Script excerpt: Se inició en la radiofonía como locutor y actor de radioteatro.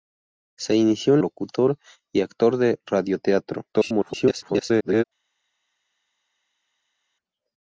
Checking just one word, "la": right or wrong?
wrong